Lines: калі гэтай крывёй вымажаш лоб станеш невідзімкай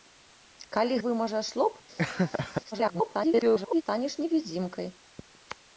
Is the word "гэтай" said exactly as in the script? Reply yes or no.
no